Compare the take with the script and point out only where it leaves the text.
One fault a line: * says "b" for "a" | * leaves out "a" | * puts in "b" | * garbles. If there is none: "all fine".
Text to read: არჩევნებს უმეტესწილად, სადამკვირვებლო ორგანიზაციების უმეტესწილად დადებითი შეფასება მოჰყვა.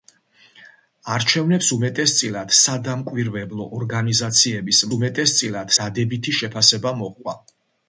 all fine